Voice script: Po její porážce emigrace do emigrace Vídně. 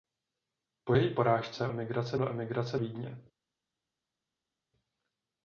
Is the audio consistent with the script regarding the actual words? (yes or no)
yes